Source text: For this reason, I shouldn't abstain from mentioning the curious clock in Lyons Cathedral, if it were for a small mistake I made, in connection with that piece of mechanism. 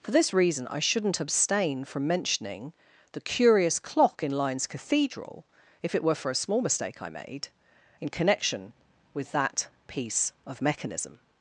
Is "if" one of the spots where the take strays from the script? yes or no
no